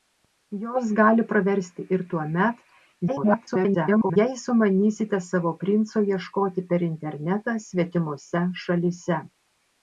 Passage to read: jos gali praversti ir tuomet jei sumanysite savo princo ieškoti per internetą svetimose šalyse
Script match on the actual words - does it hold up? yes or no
no